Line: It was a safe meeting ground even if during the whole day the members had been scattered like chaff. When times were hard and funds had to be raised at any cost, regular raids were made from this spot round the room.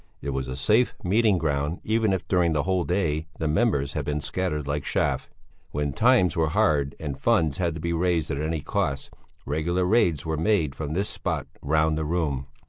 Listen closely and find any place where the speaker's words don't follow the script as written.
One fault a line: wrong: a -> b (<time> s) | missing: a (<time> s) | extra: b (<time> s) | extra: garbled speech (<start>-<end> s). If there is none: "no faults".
no faults